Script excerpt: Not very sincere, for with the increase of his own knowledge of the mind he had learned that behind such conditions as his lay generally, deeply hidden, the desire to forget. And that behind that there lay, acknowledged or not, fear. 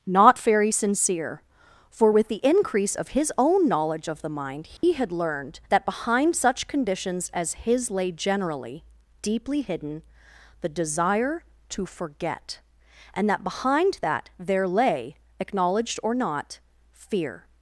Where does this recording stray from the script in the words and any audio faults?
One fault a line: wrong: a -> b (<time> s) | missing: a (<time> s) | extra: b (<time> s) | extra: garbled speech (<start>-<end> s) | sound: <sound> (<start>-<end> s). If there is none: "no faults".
sound: dropout (4.8-4.8 s)